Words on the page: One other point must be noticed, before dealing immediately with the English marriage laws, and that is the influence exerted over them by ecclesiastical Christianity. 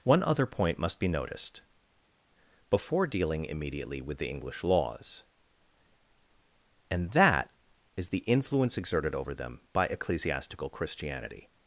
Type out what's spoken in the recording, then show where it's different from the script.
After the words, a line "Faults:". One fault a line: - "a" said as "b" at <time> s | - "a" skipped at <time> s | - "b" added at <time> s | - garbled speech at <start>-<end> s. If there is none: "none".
One other point must be noticed, before dealing immediately with the English laws, and that is the influence exerted over them by ecclesiastical Christianity.
Faults:
- "marriage" skipped at 4.6 s